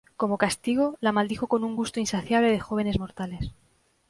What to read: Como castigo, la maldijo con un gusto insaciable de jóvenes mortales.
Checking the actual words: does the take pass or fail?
pass